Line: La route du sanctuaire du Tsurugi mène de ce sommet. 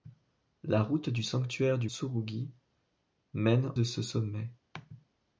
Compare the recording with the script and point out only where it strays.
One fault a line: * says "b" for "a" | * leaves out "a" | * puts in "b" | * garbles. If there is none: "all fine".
all fine